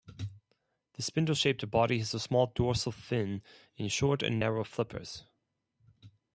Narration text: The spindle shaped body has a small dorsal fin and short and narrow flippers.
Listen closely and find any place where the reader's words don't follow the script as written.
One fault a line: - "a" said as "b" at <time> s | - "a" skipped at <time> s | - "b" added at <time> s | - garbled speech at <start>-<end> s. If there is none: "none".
none